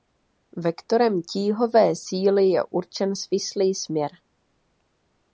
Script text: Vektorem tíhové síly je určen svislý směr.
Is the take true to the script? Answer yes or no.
yes